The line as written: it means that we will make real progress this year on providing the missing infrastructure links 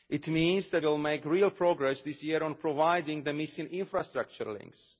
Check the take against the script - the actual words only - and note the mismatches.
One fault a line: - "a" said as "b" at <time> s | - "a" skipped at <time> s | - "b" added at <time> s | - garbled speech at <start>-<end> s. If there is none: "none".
- "we" skipped at 0.8 s